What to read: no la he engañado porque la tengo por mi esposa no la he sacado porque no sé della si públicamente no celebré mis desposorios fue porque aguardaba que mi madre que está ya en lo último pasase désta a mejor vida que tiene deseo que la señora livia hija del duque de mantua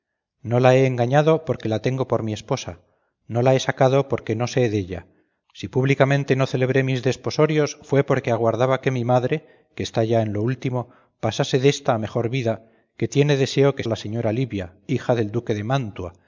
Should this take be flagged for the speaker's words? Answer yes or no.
no